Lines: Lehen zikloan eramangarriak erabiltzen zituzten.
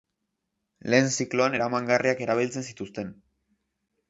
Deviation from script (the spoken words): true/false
false